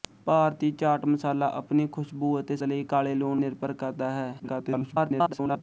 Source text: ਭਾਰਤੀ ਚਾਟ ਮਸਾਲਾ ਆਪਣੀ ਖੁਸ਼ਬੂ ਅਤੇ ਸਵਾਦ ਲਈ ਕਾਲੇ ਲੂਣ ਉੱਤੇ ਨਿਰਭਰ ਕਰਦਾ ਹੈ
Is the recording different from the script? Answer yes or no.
yes